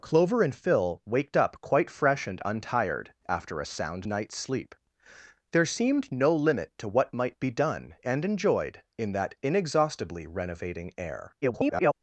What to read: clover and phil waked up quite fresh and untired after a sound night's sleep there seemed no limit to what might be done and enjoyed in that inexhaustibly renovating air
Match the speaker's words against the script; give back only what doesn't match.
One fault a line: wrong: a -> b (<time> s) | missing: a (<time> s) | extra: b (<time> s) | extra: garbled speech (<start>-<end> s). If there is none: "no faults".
extra: garbled speech (11.4-11.9 s)